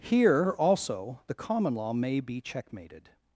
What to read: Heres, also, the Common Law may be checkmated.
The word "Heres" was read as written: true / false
false